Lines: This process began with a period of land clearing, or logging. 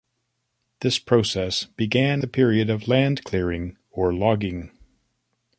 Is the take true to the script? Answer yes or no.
no